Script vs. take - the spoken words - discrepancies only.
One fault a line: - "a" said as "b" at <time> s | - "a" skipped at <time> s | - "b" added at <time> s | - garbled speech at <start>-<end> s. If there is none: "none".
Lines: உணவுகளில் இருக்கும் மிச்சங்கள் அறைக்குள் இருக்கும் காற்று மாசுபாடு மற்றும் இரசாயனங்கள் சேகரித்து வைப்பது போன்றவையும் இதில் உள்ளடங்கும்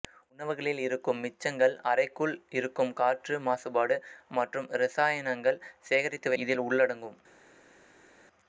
- "வைப்பது போன்றவையும்" skipped at 6.3 s